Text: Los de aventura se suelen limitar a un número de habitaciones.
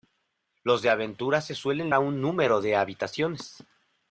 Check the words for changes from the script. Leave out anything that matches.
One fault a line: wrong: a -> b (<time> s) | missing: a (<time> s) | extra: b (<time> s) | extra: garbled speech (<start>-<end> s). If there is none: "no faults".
missing: limitar (1.9 s)